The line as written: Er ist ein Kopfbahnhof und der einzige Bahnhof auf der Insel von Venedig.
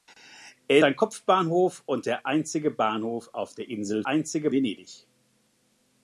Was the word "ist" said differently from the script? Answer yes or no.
yes